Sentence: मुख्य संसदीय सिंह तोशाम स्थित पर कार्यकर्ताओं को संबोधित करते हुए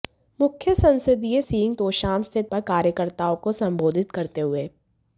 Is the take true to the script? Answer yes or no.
yes